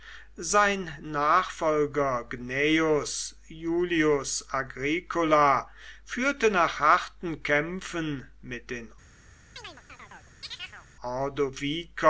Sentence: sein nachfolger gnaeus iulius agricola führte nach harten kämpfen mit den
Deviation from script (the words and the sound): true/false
true